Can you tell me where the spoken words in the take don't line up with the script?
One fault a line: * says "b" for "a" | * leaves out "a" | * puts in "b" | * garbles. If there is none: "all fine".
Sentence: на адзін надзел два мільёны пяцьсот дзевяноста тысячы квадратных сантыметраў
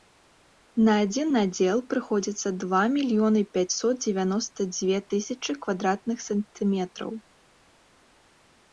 * puts in "прыходзіцца"
* puts in "дзве"